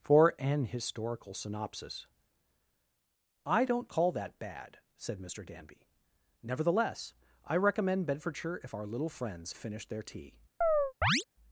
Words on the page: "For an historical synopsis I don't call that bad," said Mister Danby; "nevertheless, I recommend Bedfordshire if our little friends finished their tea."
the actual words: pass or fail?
pass